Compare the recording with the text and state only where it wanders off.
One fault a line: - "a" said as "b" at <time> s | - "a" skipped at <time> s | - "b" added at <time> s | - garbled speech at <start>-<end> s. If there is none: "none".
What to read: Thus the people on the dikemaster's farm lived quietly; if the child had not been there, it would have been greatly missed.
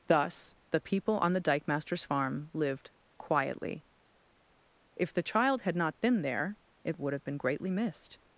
none